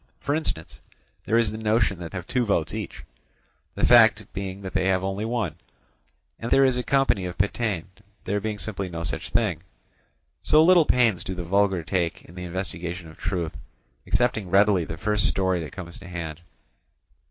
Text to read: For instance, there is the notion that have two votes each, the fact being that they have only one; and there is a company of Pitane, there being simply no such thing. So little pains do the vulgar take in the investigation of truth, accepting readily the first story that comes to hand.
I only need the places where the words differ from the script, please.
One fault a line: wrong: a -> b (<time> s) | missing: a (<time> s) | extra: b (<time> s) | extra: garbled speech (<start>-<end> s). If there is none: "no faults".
no faults